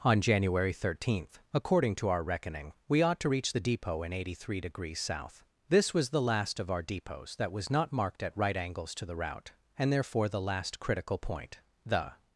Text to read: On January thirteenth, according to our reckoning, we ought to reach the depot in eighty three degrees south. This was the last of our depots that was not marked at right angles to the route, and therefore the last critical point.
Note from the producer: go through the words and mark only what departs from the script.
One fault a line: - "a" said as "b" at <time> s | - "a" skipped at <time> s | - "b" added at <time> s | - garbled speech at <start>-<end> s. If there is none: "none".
- "The" added at 11.9 s